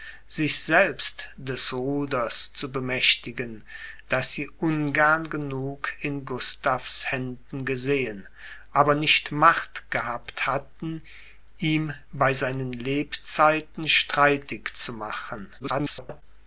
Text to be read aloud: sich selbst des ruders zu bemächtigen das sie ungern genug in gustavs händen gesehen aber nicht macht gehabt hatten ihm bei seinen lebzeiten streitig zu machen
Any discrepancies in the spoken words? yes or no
yes